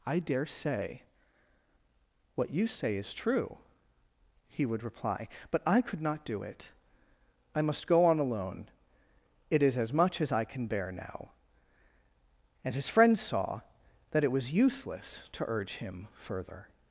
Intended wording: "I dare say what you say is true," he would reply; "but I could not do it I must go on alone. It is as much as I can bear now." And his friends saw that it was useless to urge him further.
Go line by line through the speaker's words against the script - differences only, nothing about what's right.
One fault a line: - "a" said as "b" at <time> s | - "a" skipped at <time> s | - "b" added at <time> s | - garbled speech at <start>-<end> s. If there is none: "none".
none